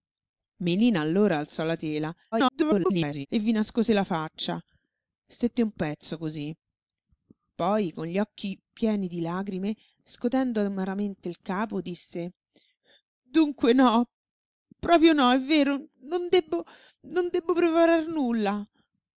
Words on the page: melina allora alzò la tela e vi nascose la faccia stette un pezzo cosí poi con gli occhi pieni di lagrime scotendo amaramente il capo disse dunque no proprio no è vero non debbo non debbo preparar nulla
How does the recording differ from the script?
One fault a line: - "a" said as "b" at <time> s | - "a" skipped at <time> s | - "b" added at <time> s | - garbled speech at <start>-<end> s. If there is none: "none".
- garbled speech at 2.3-3.3 s